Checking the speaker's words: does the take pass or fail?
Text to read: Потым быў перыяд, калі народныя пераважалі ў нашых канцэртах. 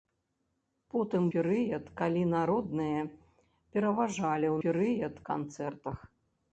fail